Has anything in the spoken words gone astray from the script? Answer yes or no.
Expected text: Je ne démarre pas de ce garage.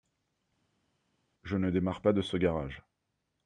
no